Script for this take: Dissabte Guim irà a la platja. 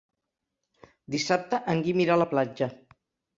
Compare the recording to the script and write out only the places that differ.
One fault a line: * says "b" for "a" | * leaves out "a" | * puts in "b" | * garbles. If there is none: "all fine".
* puts in "en"